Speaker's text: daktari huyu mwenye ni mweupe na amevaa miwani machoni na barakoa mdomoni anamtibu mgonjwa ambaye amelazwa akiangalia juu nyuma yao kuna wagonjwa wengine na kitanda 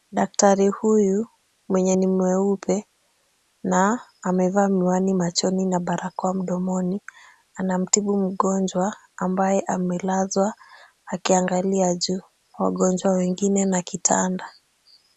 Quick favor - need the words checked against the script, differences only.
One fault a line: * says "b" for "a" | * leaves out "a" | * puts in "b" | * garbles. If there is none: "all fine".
* leaves out "nyuma yao kuna"